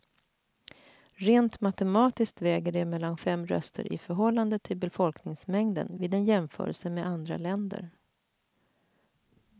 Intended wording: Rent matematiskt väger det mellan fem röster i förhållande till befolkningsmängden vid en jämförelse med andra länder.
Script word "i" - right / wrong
right